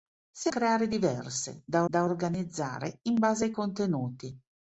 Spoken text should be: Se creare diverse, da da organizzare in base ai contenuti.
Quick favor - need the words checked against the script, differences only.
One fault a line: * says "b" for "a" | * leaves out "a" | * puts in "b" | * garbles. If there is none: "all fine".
all fine